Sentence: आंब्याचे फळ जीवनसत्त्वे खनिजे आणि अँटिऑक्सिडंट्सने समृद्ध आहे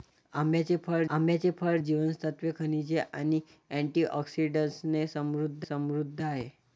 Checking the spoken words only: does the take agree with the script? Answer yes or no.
no